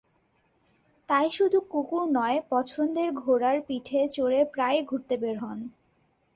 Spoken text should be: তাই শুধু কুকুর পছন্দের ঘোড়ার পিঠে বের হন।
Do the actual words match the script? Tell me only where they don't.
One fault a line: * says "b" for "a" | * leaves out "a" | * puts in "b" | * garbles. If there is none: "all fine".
* puts in "নয়"
* puts in "চড়ে প্রায়ই ঘুরতে"